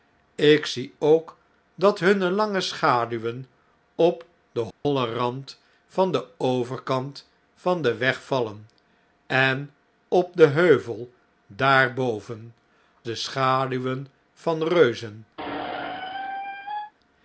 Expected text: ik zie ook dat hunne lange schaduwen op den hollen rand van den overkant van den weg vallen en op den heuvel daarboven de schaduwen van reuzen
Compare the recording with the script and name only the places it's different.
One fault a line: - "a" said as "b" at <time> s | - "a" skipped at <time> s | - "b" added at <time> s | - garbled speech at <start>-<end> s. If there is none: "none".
none